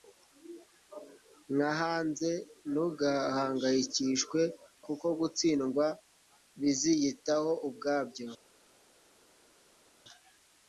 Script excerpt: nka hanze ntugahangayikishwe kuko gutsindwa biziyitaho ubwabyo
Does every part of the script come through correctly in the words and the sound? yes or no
yes